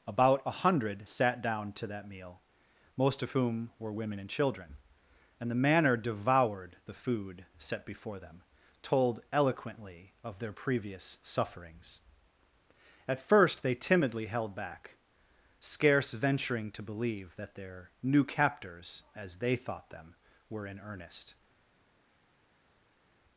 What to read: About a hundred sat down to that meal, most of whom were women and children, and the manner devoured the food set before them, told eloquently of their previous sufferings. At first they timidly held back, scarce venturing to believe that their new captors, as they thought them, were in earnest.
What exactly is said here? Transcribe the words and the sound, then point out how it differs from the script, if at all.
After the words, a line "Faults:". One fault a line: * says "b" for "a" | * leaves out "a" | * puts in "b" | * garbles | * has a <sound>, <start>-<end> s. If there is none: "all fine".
About a hundred sat down to that meal, most of whom were women and children, and the manner devoured the food set before them, told eloquently of their previous sufferings. At first they timidly held back, scarce venturing to believe that their new captors, as they thought them, were in earnest.
Faults:
all fine